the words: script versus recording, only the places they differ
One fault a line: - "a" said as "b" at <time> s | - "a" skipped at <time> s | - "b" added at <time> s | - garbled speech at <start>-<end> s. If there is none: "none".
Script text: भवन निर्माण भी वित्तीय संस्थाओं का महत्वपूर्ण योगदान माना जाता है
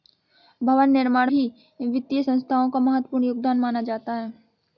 none